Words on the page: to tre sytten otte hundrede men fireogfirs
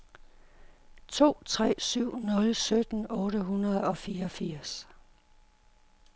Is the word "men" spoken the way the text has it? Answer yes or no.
no